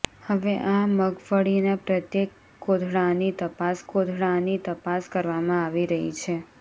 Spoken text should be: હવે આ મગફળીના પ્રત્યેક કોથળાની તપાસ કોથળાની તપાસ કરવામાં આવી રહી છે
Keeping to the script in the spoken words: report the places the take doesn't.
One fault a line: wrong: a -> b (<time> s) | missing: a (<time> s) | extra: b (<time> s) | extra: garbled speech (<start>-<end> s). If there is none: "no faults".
no faults